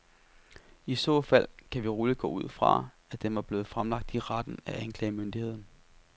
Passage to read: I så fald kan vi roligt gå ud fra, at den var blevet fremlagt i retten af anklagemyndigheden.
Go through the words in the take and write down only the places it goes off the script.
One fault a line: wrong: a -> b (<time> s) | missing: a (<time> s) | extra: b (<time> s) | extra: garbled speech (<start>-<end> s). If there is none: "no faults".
no faults